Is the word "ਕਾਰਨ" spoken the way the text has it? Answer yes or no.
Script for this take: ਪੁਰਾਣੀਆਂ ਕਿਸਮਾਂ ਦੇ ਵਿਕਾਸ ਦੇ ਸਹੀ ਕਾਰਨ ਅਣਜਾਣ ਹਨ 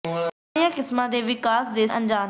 no